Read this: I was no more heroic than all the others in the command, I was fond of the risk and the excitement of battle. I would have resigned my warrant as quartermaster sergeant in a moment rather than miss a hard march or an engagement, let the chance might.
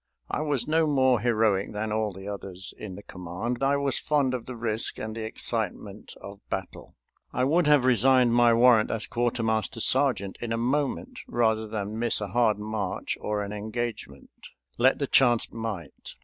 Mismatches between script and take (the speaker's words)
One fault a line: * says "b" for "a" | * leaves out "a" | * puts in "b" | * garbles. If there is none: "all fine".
all fine